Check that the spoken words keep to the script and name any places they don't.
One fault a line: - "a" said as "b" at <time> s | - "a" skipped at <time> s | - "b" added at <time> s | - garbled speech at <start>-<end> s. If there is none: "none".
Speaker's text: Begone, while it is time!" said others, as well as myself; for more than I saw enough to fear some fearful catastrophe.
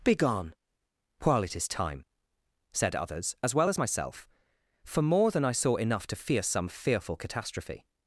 none